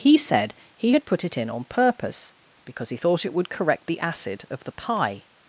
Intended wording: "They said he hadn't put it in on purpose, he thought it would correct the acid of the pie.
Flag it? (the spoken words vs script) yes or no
yes